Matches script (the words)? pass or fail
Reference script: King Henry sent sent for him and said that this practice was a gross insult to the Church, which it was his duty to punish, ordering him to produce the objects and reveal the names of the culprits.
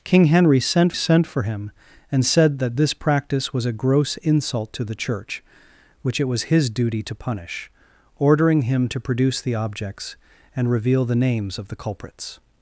pass